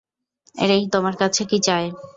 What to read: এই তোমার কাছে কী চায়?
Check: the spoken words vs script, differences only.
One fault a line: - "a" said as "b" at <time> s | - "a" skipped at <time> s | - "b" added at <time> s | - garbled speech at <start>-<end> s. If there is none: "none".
none